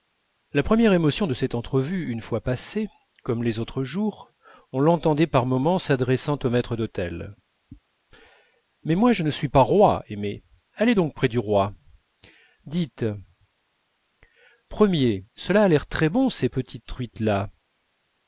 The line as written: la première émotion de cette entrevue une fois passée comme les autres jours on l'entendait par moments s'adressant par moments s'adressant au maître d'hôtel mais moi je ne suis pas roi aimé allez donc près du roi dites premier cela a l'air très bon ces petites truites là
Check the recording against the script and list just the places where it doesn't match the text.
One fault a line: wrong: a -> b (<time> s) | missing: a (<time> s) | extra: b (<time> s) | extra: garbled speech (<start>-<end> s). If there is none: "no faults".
missing: par moments s'adressant (6.4 s)